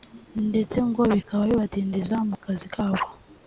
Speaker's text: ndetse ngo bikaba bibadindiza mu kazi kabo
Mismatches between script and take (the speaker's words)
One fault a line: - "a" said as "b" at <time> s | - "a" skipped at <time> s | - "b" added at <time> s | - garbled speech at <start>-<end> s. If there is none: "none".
none